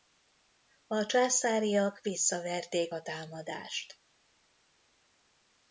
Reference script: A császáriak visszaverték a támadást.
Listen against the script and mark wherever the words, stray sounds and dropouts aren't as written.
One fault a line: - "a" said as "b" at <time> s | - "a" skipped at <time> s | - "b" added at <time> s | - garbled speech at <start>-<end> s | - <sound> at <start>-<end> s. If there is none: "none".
none